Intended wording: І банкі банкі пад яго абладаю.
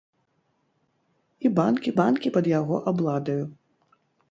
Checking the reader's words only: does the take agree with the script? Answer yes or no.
yes